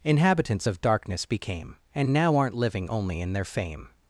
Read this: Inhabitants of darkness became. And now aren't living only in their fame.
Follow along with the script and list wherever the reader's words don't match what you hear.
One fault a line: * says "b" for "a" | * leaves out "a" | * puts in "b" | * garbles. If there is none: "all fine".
all fine